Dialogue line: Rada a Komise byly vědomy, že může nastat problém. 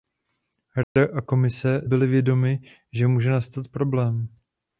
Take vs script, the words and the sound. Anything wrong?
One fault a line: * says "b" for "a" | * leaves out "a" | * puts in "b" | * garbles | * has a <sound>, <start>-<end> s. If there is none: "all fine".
* has a dropout, 0.8-1.0 s